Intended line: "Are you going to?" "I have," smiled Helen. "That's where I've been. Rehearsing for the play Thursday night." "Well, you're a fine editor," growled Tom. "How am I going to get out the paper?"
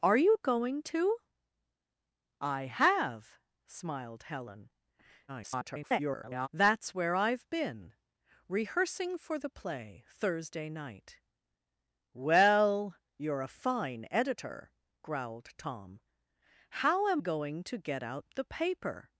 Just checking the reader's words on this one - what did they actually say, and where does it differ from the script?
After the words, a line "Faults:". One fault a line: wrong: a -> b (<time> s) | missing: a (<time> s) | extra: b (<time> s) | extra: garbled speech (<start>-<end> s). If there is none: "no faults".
"Are you going to?" "I have," smiled Helen. [garbled] "That's where I've been. Rehearsing for the play Thursday night." "Well, you're a fine editor," growled Tom. "How am going to get out the paper?"
Faults:
extra: garbled speech (5.3-6.5 s)
missing: I (17.2 s)